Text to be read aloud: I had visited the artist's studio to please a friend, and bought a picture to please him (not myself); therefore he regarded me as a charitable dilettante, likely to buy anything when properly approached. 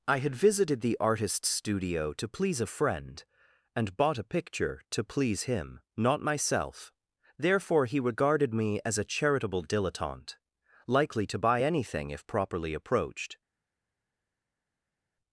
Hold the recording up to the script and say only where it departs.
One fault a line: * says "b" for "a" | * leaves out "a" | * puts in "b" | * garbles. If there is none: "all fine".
* says "if" for "when"